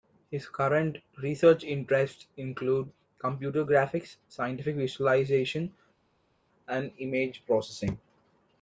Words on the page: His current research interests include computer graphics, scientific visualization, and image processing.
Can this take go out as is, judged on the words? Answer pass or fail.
pass